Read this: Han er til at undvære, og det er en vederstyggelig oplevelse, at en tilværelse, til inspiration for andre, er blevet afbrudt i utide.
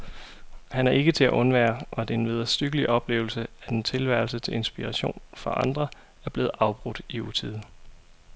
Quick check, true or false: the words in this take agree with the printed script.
false